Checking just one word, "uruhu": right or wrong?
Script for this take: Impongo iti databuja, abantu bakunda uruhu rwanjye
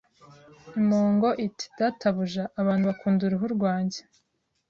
right